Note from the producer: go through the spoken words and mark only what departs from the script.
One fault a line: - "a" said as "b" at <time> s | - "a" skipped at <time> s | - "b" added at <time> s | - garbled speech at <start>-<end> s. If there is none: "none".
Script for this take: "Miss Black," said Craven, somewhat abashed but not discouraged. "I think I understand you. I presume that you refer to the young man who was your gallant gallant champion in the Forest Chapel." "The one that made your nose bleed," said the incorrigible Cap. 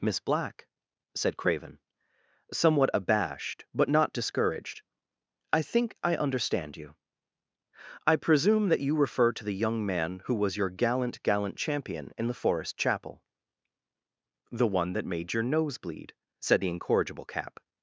none